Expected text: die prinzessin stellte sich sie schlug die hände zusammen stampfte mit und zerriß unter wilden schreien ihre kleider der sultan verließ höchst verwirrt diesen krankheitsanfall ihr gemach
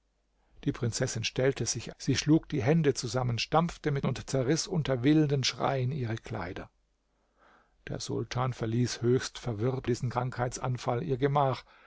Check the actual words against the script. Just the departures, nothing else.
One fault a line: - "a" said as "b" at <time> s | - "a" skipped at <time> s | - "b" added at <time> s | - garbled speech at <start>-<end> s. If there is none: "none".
none